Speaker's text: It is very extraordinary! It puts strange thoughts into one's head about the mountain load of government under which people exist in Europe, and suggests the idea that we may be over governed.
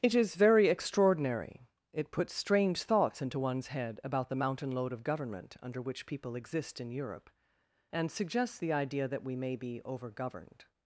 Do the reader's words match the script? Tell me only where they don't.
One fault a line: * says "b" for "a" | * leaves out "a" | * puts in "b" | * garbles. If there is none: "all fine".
all fine